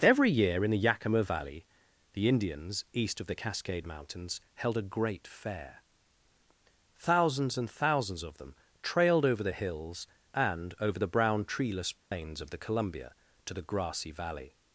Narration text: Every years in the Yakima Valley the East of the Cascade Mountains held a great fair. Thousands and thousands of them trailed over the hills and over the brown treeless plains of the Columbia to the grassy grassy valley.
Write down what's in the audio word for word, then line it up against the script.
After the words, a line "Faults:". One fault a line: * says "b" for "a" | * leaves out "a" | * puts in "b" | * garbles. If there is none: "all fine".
Every year in the Yakima Valley the Indians east of the Cascade Mountains held a great fair. Thousands and thousands of them trailed over the hills and over the brown treeless plains of the Columbia to the grassy valley.
Faults:
* says "year" for "years"
* puts in "Indians"
* leaves out "grassy"